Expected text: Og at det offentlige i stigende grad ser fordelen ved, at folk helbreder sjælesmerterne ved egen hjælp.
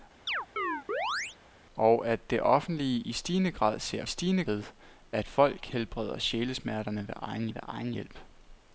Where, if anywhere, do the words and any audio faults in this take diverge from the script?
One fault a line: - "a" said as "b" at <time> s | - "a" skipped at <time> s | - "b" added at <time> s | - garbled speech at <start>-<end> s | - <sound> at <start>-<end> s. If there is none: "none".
- chirp at 0.3-1.4 s
- "fordelen" said as "stigende" at 4.0 s
- "ved egen" added at 7.5 s